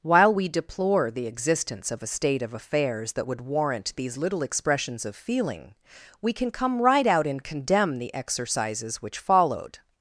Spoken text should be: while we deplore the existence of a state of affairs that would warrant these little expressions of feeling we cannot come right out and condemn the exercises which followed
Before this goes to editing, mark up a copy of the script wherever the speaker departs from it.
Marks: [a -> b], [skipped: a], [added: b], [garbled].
while we deplore the existence of a state of affairs that would warrant these little expressions of feeling we [cannot -> can] come right out and condemn the exercises which followed